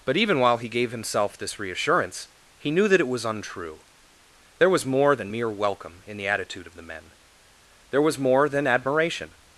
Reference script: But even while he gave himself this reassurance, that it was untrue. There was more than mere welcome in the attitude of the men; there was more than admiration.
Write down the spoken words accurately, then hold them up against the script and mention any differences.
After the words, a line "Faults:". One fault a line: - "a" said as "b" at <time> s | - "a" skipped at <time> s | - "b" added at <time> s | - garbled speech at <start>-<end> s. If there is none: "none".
But even while he gave himself this reassurance, he knew that it was untrue. There was more than mere welcome in the attitude of the men; there was more than admiration.
Faults:
- "he knew" added at 2.6 s